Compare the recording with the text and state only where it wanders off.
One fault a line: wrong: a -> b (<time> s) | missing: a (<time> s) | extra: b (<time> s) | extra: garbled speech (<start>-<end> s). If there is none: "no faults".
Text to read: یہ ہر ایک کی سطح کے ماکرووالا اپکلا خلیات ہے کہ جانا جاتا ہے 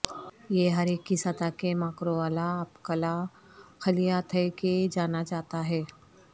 no faults